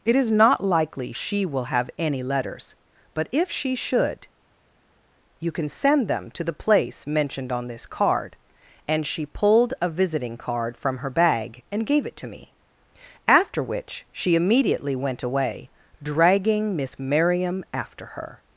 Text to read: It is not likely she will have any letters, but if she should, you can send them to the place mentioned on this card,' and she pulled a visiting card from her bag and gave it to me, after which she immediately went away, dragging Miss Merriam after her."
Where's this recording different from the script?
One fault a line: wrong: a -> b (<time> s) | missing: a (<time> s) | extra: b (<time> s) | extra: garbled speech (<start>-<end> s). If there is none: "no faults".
no faults